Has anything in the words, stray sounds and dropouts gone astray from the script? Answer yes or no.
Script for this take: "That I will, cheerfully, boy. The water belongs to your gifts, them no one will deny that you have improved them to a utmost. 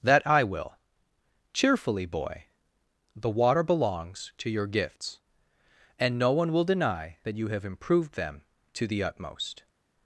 yes